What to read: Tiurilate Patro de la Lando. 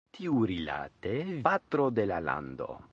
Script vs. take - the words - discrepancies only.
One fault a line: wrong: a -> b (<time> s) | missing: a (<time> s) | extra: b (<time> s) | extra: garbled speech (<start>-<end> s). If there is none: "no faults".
no faults